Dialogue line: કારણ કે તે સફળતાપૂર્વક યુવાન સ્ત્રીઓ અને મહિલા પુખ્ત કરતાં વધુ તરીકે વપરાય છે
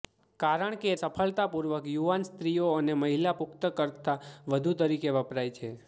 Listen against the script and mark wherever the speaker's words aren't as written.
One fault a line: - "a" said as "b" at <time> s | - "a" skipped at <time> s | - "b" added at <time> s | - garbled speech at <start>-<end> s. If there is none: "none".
- "તે" skipped at 0.9 s